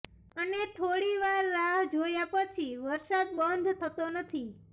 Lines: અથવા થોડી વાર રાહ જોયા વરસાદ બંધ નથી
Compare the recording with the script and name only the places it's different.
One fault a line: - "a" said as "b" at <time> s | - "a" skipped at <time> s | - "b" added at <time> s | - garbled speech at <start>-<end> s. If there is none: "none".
- "અથવા" said as "અને" at 0.3 s
- "પછી" added at 2.3 s
- "થતો" added at 3.8 s